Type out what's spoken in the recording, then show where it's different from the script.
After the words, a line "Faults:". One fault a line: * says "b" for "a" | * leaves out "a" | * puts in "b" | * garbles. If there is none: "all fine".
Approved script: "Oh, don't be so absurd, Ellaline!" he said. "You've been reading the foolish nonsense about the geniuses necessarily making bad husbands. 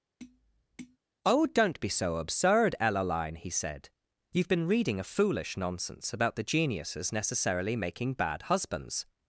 "Oh, don't be so absurd, Ellaline!" he said. "You've been reading a foolish nonsense about the geniuses necessarily making bad husbands.
Faults:
* says "a" for "the"